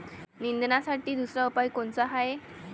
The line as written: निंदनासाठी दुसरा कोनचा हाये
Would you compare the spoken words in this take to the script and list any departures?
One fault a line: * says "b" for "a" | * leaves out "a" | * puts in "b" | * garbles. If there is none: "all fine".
* puts in "उपाव"